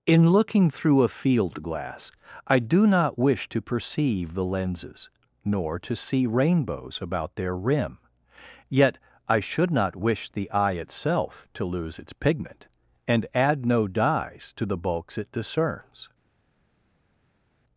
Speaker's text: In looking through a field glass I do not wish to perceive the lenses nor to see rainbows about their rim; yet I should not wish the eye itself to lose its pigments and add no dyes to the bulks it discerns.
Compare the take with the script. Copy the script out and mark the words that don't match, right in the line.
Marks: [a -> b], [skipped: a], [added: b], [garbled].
In looking through a field glass I do not wish to perceive the lenses nor to see rainbows about their rim; yet I should not wish the eye itself to lose its [pigments -> pigment] and add no dyes to the bulks it discerns.